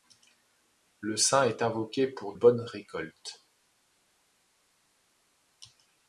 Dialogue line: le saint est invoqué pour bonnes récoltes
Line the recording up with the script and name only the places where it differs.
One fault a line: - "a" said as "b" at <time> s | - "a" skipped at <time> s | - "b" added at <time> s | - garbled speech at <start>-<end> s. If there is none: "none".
none